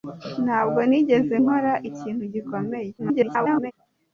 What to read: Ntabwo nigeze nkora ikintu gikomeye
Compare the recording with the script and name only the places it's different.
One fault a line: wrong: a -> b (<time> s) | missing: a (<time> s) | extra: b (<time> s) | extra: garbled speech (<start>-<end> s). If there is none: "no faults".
extra: garbled speech (3.0-3.7 s)